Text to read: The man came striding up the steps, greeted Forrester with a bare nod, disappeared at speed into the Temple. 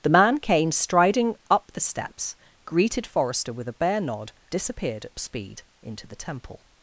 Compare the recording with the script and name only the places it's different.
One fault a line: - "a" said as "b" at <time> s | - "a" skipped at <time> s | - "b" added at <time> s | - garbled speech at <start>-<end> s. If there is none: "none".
none